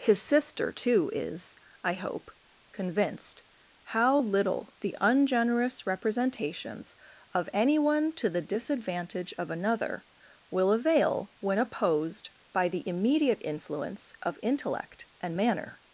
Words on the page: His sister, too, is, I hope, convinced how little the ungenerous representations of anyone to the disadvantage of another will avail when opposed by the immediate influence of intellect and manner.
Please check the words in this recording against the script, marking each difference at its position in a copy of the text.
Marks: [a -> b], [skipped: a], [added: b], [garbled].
His sister, too, is, I hope, convinced how little the ungenerous representations of anyone to the disadvantage of another will avail when opposed by the immediate influence of intellect and manner.